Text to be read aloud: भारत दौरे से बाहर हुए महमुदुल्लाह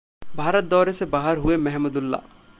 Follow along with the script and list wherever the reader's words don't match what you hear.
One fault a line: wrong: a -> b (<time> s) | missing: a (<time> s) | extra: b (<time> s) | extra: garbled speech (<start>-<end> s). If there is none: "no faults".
no faults